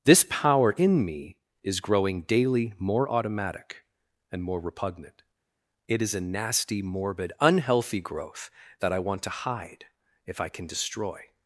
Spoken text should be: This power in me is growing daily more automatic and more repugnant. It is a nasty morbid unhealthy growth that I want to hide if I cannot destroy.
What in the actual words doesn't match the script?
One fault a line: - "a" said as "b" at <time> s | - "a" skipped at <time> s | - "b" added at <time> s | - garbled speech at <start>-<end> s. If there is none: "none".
- "cannot" said as "can" at 10.5 s